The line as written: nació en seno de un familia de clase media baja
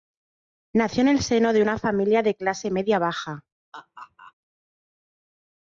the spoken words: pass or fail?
fail